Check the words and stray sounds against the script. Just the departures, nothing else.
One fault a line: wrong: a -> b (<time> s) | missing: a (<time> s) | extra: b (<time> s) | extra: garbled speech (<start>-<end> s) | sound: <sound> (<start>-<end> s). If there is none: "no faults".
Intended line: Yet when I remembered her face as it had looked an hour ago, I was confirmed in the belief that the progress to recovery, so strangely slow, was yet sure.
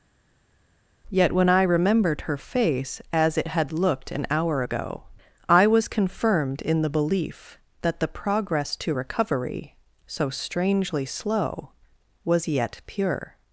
wrong: sure -> pure (12.8 s)